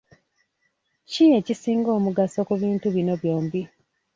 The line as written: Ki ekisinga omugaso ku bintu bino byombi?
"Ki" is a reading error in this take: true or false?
false